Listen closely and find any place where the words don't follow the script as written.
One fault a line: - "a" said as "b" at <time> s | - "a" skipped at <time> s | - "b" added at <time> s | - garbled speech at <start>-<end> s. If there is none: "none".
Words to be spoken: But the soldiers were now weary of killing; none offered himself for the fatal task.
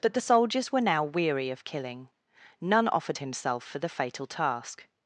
none